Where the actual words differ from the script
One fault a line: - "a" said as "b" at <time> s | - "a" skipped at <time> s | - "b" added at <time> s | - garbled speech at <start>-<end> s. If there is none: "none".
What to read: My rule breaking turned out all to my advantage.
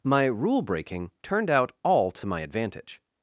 - "to" added at 2.1 s